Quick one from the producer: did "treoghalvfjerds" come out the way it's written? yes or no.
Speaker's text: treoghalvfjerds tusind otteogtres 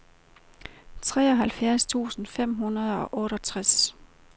yes